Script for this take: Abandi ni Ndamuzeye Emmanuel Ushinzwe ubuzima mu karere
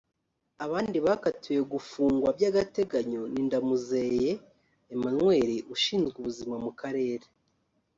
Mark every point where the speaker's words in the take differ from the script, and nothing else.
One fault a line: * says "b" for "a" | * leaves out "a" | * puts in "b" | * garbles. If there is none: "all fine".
* puts in "bakatiwe gufungwa by'agateganyo"